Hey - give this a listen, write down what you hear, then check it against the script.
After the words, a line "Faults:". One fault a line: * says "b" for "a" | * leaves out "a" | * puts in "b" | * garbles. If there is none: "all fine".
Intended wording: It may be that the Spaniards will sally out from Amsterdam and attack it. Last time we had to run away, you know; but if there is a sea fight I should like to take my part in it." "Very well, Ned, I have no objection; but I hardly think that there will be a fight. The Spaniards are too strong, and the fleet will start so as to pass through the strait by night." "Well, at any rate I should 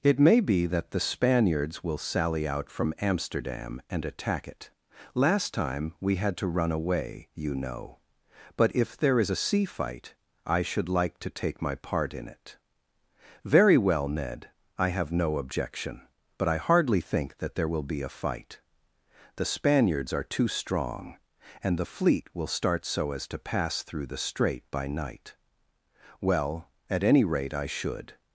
It may be that the Spaniards will sally out from Amsterdam and attack it. Last time we had to run away, you know; but if there is a sea fight I should like to take my part in it." "Very well, Ned, I have no objection; but I hardly think that there will be a fight. The Spaniards are too strong, and the fleet will start so as to pass through the strait by night." "Well, at any rate I should
Faults:
all fine